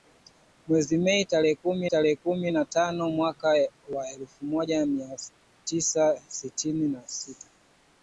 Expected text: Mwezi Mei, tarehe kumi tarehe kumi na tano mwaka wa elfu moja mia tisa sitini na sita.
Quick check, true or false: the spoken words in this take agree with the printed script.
true